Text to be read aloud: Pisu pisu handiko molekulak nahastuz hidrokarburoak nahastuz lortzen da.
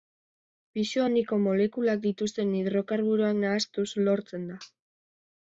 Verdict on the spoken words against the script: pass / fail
fail